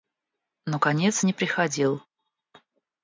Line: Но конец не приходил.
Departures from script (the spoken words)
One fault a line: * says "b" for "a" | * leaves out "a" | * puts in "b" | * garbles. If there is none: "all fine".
all fine